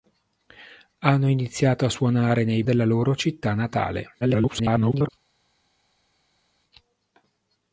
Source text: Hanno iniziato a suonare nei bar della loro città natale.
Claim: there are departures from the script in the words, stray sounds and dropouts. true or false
true